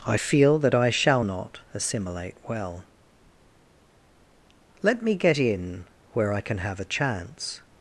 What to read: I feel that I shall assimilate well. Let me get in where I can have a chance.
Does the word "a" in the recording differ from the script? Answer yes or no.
no